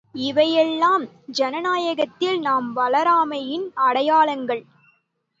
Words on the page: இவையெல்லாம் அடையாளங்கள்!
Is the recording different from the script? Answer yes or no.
yes